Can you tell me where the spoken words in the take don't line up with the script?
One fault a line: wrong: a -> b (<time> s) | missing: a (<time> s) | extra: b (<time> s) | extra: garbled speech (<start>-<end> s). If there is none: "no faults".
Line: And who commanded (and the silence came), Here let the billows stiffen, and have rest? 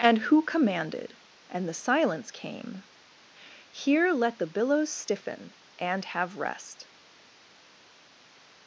no faults